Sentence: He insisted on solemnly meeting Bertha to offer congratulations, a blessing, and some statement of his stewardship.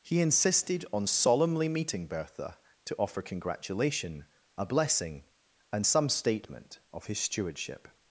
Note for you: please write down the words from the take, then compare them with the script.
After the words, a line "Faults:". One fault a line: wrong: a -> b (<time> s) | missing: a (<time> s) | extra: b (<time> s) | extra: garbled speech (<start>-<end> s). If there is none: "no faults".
He insisted on solemnly meeting Bertha to offer congratulation, a blessing, and some statement of his stewardship.
Faults:
wrong: congratulations -> congratulation (3.2 s)